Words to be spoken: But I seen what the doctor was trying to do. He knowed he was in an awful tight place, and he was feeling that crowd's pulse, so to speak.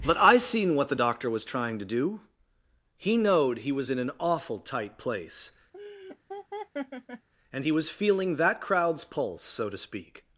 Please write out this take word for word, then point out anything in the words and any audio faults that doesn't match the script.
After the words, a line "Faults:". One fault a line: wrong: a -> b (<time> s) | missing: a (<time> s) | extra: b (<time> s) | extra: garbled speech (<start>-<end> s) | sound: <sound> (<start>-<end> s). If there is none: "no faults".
But I seen what the doctor was trying to do. He knowed he was in an awful tight place, and he was feeling that crowd's pulse, so to speak.
Faults:
sound: laugh (5.7-7.3 s)